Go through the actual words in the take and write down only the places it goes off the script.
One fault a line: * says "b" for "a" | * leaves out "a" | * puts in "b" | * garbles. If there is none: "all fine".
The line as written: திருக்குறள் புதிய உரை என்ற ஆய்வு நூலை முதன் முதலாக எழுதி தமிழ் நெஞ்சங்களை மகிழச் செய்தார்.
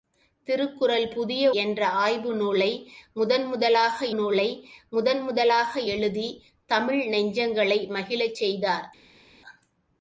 * leaves out "உரை"
* puts in "நூலை முதன் முதலாக"